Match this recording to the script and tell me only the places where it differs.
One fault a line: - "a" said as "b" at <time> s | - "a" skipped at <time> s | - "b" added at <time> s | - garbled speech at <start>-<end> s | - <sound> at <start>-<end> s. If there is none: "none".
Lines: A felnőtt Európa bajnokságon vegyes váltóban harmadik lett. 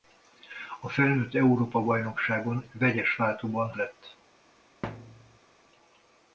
- "harmadik" skipped at 3.7 s
- thud at 4.8-5.4 s